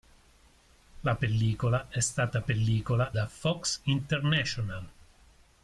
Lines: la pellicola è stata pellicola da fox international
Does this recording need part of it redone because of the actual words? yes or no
no